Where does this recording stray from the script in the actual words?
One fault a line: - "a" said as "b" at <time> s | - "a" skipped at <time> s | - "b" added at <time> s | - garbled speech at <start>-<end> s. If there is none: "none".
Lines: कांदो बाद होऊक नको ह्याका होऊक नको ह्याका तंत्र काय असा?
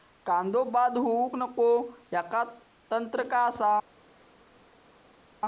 - "होऊक नको ह्याका" skipped at 2.4 s